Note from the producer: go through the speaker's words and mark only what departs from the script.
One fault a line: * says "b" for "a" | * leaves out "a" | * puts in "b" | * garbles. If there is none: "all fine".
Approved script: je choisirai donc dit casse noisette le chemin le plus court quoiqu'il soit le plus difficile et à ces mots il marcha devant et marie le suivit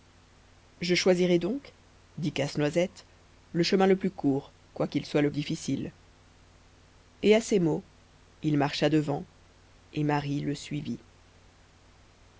* leaves out "plus"